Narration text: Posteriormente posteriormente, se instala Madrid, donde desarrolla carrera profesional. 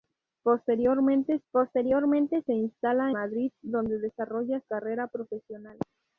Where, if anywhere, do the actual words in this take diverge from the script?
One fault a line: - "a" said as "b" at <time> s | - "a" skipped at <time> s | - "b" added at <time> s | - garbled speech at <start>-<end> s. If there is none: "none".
none